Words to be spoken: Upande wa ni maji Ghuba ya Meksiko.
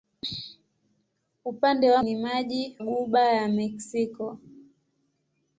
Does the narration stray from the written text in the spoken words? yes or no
no